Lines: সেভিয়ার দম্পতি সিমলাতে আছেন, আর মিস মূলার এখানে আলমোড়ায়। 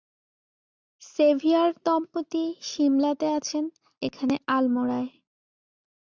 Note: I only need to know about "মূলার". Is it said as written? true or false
false